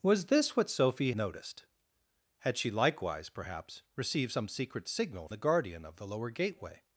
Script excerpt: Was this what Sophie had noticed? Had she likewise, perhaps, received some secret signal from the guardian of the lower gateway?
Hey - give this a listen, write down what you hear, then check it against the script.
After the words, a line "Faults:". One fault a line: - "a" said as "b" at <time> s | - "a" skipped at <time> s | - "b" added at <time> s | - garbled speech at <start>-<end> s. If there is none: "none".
Was this what Sophie noticed? Had she likewise, perhaps, received some secret signal the guardian of the lower gateway?
Faults:
- "had" skipped at 1.1 s
- "from" skipped at 5.3 s